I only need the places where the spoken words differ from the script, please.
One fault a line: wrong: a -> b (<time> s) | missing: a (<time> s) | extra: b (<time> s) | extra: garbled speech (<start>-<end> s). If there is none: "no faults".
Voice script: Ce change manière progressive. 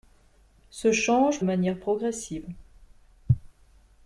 no faults